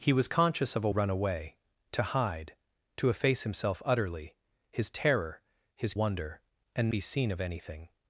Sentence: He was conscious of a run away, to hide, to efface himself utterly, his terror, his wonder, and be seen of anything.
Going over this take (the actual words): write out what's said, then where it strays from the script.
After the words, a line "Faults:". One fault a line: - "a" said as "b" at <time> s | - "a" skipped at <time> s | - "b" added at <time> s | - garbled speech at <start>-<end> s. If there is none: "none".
He was conscious of a run away, to hide, to efface himself utterly, his terror, his wonder, and be seen of anything.
Faults:
none